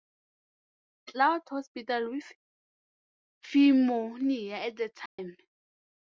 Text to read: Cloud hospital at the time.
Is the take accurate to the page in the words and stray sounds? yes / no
no